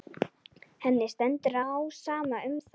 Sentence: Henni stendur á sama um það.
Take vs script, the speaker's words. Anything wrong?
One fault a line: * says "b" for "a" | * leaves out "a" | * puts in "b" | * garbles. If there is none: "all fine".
all fine